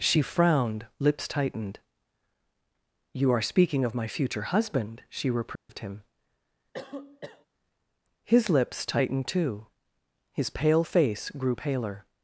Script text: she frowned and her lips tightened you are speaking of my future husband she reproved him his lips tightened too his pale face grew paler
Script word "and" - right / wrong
wrong